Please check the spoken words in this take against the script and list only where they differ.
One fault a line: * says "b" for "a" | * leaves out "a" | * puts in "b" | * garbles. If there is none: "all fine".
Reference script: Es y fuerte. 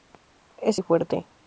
all fine